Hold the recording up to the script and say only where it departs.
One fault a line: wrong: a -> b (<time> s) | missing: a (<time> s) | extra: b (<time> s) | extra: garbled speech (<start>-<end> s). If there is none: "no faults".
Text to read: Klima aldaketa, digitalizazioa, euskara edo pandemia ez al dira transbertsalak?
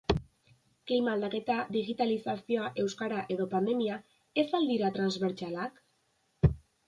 no faults